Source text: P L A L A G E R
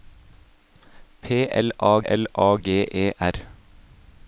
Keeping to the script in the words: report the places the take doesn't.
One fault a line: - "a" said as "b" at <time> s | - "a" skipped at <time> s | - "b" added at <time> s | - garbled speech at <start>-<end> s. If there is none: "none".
none